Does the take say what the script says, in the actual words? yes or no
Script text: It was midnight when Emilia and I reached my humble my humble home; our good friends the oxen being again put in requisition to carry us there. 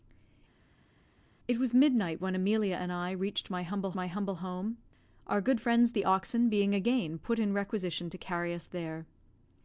yes